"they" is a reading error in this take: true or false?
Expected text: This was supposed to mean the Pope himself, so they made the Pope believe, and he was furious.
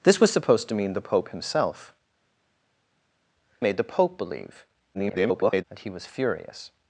true